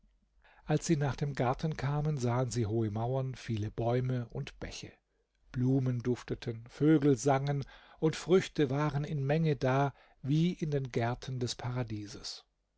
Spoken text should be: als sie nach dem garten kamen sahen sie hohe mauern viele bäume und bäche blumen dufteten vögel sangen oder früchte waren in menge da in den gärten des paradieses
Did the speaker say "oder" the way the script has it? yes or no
no